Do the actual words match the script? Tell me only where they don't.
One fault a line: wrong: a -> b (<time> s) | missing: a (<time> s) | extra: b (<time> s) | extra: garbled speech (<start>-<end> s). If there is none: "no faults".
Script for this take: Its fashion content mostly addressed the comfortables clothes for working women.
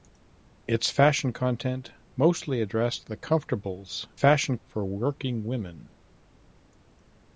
wrong: clothes -> fashion (4.1 s)